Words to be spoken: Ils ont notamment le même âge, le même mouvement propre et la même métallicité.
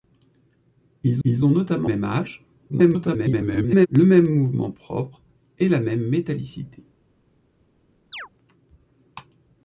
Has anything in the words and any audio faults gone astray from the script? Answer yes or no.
yes